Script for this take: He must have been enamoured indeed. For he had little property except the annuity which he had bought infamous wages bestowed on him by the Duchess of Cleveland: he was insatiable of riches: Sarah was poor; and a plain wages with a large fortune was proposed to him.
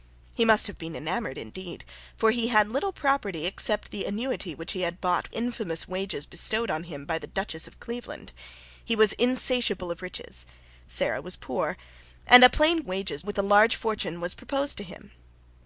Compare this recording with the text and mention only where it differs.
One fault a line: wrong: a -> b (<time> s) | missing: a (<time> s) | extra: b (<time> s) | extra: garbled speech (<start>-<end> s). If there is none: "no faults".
no faults